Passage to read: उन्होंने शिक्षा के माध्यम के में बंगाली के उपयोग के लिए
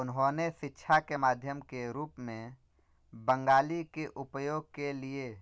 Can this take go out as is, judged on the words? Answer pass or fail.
fail